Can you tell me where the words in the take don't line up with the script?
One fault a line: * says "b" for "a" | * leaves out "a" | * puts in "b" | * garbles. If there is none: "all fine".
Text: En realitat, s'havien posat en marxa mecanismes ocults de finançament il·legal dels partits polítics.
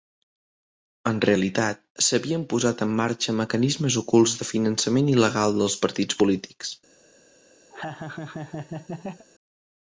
all fine